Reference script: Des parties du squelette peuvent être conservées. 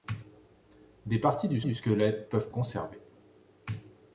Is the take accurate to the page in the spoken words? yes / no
no